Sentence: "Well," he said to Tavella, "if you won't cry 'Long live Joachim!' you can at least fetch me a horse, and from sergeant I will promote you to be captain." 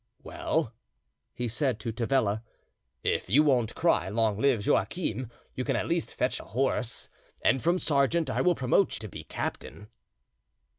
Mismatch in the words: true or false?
true